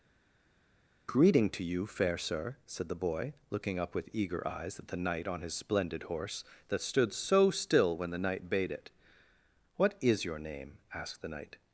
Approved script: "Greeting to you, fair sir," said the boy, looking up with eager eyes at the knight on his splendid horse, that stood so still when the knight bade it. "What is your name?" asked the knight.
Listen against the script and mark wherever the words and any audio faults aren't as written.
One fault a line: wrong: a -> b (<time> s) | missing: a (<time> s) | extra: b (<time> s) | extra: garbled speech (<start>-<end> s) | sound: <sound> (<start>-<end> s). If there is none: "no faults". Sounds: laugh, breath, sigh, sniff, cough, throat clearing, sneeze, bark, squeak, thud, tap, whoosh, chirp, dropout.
no faults